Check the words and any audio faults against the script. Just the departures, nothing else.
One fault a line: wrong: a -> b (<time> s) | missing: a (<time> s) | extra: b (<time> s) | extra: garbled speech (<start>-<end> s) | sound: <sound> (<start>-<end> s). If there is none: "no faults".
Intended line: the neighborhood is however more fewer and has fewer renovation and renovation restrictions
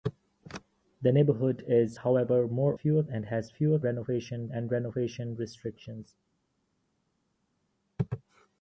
no faults